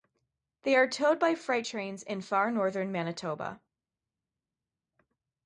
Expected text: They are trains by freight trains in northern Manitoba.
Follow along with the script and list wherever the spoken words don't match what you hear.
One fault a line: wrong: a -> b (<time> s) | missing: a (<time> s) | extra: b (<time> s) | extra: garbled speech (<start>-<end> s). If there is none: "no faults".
wrong: trains -> towed (0.9 s)
extra: far (2.2 s)